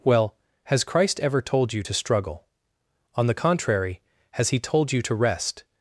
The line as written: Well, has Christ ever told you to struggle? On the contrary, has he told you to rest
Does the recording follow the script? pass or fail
pass